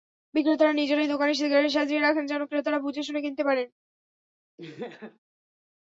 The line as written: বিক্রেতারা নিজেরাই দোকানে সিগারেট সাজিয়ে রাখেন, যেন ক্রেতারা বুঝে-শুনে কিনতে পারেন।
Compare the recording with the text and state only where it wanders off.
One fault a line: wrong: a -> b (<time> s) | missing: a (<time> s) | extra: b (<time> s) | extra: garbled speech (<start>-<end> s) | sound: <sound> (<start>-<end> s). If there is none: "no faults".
sound: laugh (4.6-5.2 s)